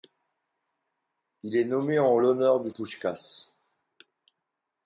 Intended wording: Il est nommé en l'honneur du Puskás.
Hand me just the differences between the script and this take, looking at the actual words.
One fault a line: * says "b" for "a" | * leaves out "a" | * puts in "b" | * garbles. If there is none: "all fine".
all fine